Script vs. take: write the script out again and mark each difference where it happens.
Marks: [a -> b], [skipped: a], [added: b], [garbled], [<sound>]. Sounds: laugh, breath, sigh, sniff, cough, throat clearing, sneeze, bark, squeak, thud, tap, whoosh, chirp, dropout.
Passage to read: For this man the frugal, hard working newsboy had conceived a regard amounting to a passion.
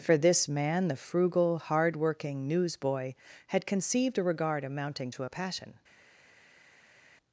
For this man the frugal, hard working newsboy had conceived a regard amounting to a passion.